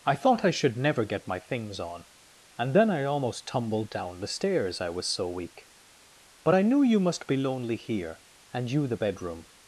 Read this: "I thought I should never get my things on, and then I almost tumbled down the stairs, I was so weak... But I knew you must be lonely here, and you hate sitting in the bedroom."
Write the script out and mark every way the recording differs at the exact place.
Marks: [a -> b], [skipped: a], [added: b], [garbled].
"I thought I should never get my things on, and then I almost tumbled down the stairs, I was so weak... But I knew you must be lonely here, and you [skipped: hate sitting in] the bedroom."